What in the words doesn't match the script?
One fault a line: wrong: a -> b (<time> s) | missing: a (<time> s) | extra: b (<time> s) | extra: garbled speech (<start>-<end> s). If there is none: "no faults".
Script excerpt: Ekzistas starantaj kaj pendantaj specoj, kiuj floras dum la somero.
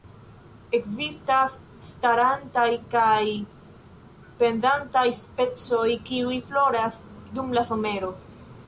no faults